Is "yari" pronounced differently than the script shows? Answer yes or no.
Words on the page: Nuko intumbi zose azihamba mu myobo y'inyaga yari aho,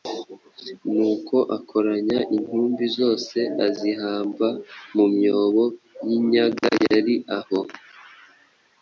no